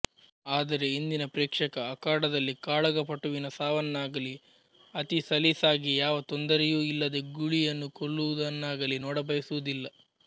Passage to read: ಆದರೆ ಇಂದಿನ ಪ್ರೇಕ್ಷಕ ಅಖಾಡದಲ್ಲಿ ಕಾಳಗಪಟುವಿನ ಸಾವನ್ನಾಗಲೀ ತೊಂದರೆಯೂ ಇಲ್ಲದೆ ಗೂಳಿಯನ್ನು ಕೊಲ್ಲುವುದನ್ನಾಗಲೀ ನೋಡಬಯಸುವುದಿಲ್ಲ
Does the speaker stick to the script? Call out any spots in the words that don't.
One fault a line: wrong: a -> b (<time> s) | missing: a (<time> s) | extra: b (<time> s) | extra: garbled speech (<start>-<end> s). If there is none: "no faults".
extra: ಅತಿ ಸಲೀಸಾಗಿ ಯಾವ (4.9 s)